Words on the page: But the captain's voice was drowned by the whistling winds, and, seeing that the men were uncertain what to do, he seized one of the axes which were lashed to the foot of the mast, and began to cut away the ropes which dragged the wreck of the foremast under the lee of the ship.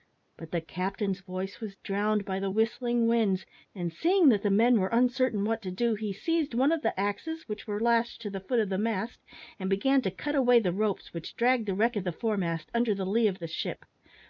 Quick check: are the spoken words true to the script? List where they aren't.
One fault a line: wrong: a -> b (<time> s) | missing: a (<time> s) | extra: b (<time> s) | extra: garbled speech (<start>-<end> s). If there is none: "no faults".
no faults